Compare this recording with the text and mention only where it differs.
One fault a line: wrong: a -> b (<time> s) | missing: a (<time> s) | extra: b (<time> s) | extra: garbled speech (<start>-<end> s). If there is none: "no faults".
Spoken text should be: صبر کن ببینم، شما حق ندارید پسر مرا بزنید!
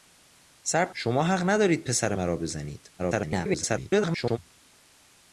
missing: کن ببینم (0.9 s)
extra: garbled speech (3.0-4.4 s)